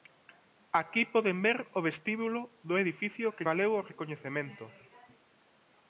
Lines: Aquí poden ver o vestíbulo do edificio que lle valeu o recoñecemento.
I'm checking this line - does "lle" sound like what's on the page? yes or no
no